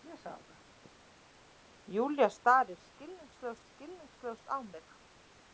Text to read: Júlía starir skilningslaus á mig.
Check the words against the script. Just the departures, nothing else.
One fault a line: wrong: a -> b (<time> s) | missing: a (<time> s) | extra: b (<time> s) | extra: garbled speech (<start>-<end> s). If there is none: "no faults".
extra: skilningslaus (3.7 s)